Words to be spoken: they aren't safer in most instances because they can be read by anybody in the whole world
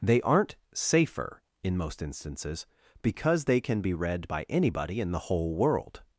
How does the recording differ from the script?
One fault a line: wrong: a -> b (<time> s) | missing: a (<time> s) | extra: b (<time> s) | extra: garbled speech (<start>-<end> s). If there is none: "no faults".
no faults